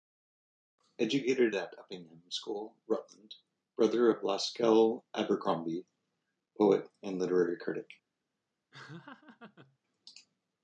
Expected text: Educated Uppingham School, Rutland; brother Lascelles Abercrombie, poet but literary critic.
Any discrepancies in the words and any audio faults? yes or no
yes